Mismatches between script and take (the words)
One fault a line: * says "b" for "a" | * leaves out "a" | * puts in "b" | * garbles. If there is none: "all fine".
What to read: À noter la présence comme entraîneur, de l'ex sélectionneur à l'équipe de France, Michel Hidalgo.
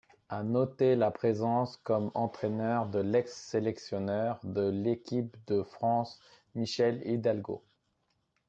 * says "de" for "à"